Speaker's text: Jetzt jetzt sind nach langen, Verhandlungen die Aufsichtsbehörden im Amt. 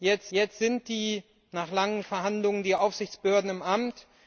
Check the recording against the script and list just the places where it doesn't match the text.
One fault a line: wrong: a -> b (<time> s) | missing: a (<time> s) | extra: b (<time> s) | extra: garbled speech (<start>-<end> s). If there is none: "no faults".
no faults